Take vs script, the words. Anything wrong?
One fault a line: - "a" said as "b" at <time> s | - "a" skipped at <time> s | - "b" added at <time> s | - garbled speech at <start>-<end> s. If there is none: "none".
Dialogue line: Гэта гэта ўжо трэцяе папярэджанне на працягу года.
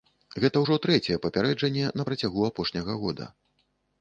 - "гэта" skipped at 0.6 s
- "апошняга" added at 2.5 s